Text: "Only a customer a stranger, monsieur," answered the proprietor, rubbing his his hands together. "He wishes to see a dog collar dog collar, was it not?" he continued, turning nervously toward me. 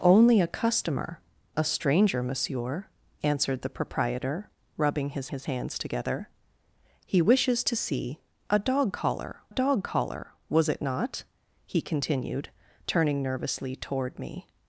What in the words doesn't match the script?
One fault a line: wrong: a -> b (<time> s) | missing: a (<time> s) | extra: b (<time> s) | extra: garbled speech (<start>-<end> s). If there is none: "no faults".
no faults